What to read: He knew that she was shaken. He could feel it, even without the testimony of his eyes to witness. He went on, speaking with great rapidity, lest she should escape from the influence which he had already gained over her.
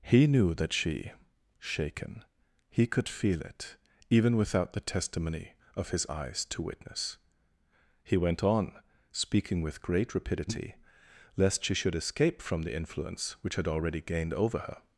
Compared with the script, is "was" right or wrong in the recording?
wrong